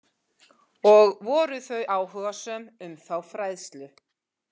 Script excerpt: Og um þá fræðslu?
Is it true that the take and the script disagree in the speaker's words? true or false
true